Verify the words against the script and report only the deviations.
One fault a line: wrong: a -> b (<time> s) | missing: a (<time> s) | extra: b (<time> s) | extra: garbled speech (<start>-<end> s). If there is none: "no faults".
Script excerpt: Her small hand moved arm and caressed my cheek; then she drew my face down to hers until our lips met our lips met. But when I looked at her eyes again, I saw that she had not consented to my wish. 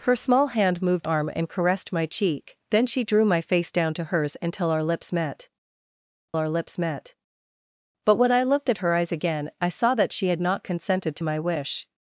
no faults